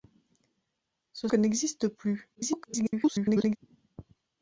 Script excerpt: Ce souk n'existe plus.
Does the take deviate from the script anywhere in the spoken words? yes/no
yes